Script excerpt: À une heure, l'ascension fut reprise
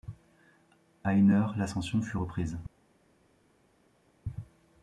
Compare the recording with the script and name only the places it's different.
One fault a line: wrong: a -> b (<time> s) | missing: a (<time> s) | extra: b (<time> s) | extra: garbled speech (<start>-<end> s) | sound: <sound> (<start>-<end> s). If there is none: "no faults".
no faults